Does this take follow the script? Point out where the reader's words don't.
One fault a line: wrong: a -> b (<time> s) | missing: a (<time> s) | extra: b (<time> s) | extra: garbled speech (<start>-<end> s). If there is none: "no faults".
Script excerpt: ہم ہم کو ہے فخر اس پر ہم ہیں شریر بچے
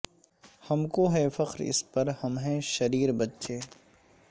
missing: ہم (0.8 s)